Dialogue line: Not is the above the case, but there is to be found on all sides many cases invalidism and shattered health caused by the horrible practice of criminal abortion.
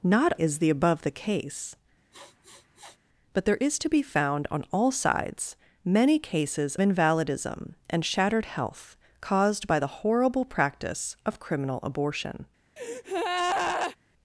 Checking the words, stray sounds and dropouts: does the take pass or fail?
fail